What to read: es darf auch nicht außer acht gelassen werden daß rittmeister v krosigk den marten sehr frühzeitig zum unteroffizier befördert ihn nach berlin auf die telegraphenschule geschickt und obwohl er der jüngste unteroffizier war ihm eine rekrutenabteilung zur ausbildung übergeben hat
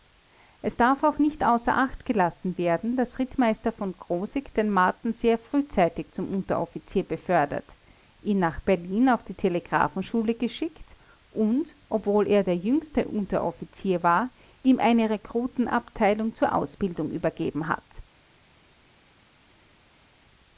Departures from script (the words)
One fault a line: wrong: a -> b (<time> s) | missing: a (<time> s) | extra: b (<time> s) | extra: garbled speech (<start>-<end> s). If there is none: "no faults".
no faults